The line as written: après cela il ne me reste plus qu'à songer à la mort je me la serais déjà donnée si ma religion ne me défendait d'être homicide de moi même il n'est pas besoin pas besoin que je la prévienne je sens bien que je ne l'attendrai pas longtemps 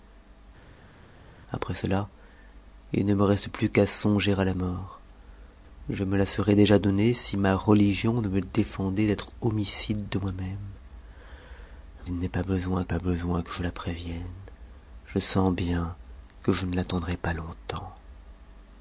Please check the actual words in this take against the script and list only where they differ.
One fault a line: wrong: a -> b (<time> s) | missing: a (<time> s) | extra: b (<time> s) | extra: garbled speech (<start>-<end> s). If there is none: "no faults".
no faults